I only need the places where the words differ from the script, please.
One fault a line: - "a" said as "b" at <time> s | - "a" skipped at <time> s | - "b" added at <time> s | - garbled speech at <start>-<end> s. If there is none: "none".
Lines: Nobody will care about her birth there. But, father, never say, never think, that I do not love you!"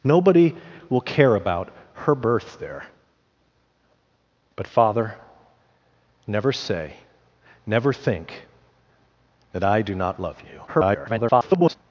- garbled speech at 10.7-11.8 s